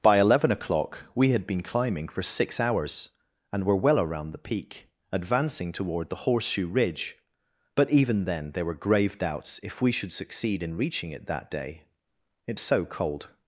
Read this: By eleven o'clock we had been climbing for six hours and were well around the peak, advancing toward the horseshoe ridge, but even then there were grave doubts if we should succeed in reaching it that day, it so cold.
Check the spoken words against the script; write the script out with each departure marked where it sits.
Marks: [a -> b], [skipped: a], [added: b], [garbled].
By eleven o'clock we had been climbing for six hours and were well around the peak, advancing toward the horseshoe ridge, but even then there were grave doubts if we should succeed in reaching it that day, it so cold.